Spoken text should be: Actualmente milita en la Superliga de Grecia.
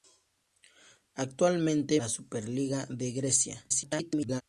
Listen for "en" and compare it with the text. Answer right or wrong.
wrong